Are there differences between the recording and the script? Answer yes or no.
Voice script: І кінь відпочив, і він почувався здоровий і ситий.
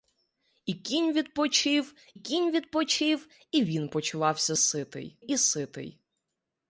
yes